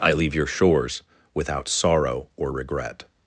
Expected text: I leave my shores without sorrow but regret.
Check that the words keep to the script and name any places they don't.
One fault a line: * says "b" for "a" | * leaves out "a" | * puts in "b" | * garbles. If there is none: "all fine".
* says "your" for "my"
* says "or" for "but"